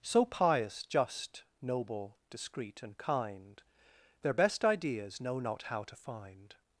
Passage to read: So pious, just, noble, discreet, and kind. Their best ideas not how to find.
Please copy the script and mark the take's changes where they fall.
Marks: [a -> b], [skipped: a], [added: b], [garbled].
So pious, just, noble, discreet, and kind. Their best ideas [added: know] not how to find.